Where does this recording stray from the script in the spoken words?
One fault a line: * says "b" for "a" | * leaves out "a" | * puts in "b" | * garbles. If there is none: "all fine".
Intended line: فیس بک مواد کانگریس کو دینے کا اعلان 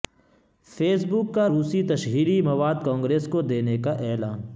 * puts in "کا روسی تشہیری"